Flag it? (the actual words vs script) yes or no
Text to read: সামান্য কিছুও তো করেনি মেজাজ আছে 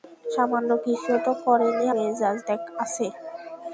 no